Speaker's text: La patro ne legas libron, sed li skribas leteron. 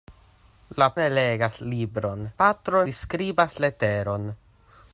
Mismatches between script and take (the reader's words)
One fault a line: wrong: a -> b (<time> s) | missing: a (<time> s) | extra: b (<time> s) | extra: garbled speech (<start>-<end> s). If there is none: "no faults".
missing: patro (0.9 s)
wrong: sed -> patro (2.4 s)